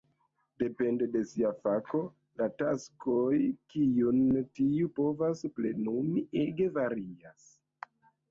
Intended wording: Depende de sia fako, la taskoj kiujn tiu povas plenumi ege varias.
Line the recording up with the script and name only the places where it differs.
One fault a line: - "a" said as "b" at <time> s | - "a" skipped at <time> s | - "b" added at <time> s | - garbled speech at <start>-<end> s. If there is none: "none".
none